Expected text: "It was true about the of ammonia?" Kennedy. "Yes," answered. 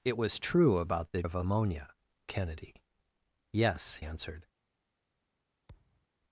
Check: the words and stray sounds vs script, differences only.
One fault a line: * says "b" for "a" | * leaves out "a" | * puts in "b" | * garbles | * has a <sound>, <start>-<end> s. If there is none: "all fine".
* has a thud, 5.7-6.1 s